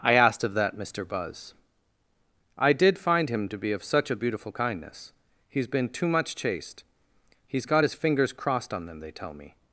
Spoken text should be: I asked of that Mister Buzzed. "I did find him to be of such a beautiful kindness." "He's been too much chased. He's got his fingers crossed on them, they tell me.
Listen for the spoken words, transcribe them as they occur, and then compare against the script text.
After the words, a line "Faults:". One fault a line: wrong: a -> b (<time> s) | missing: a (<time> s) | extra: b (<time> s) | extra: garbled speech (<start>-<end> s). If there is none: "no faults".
I asked of that Mister Buzz. "I did find him to be of such a beautiful kindness." "He's been too much chased. He's got his fingers crossed on them, they tell me.
Faults:
wrong: Buzzed -> Buzz (1.1 s)